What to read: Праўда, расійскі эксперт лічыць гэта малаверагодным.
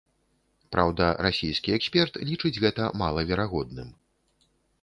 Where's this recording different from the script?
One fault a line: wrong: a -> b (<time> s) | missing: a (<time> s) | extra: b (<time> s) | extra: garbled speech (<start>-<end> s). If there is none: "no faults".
no faults